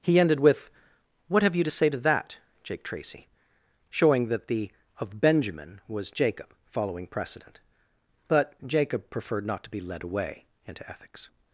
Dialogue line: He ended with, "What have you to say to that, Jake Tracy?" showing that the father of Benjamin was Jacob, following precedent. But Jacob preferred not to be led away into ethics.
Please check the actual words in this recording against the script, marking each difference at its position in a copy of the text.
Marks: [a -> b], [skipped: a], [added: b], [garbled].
He ended with, "What have you to say to that, Jake Tracy?" showing that the [skipped: father] of Benjamin was Jacob, following precedent. But Jacob preferred not to be led away into ethics.